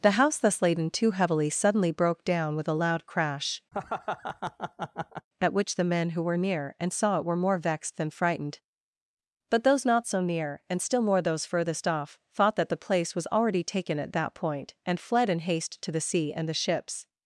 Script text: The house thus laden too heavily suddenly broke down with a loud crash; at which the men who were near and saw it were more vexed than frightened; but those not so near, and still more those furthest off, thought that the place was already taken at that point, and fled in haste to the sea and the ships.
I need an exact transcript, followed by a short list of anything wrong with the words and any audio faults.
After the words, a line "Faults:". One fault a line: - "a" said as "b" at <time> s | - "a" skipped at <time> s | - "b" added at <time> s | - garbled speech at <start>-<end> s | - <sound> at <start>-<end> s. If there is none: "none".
The house thus laden too heavily suddenly broke down with a loud crash; at which the men who were near and saw it were more vexed than frightened; but those not so near, and still more those furthest off, thought that the place was already taken at that point, and fled in haste to the sea and the ships.
Faults:
- laugh at 3.7-5.3 s